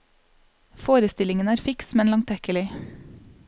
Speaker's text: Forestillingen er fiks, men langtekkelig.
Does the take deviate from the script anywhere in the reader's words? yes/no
no